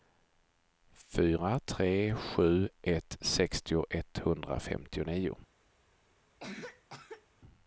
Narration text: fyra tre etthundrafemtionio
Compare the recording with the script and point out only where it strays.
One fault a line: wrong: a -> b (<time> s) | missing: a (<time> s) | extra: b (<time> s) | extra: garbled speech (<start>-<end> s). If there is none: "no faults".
extra: sju ett sextio (2.1 s)